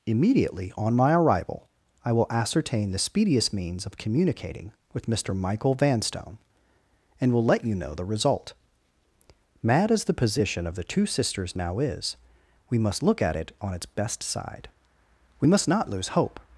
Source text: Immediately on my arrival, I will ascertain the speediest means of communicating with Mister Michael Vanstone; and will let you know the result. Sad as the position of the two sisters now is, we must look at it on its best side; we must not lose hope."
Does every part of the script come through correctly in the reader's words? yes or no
no